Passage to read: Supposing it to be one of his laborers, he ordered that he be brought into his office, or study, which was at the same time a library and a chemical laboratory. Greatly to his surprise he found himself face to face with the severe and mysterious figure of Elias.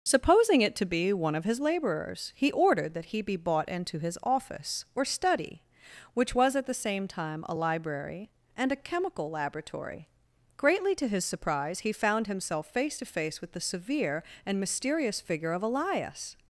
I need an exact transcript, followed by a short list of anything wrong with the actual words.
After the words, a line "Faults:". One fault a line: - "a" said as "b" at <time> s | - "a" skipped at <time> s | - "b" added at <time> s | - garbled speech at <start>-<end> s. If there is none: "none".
Supposing it to be one of his laborers, he ordered that he be bought into his office, or study, which was at the same time a library and a chemical laboratory. Greatly to his surprise he found himself face to face with the severe and mysterious figure of Elias.
Faults:
- "brought" said as "bought" at 3.4 s